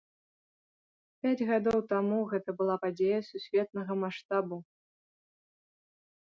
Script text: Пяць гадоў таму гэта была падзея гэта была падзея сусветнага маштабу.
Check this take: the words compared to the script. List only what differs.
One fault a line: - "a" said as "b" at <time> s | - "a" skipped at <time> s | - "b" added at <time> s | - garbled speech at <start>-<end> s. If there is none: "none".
- "гэта была падзея" skipped at 3.2 s